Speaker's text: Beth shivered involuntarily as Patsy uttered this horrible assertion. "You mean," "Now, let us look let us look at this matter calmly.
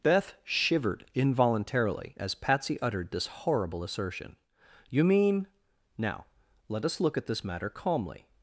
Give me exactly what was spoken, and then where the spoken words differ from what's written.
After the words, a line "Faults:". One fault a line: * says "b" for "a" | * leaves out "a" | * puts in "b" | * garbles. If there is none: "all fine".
Beth shivered involuntarily as Patsy uttered this horrible assertion. "You mean," "Now, let us look at this matter calmly.
Faults:
* leaves out "let us look"